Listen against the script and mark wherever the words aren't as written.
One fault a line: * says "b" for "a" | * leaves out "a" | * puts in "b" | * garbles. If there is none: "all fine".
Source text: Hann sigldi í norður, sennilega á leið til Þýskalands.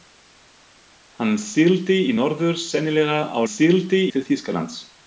* says "sigldi" for "leið"